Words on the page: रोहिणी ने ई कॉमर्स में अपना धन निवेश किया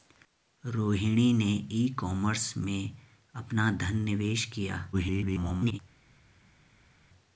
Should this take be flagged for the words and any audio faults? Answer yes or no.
yes